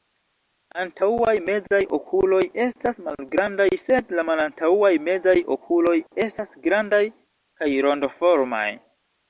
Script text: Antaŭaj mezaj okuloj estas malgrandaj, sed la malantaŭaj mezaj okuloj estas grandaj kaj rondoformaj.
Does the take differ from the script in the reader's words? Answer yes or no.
no